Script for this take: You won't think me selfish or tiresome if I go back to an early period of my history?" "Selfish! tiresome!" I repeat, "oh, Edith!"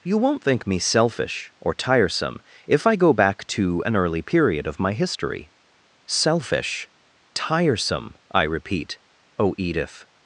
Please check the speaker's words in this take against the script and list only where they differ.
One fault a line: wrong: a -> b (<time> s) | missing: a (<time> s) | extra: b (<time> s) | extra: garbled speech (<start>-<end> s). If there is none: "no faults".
no faults